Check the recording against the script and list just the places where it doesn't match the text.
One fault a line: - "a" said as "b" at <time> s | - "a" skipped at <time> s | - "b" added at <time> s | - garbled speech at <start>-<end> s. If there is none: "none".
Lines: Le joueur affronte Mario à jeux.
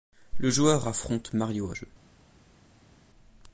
none